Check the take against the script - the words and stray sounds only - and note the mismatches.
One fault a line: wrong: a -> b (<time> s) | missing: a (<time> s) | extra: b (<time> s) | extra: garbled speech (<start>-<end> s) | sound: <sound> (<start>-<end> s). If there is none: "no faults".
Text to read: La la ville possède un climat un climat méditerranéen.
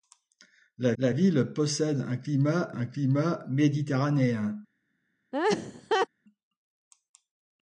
sound: laugh (5.3-6.1 s)